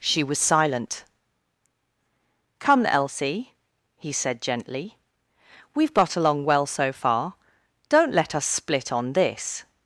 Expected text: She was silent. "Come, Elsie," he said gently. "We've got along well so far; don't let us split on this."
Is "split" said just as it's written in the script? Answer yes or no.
yes